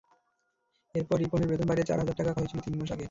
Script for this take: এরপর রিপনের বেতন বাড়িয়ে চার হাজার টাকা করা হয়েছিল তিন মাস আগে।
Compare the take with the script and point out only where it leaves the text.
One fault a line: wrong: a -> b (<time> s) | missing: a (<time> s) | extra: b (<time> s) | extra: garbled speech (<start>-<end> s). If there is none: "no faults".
missing: করা (2.3 s)